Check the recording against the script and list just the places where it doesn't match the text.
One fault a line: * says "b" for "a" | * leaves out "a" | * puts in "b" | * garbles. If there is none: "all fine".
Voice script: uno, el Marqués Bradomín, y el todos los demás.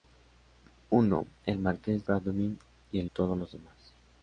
all fine